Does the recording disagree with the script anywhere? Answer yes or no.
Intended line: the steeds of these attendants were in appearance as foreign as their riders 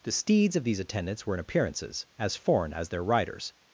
yes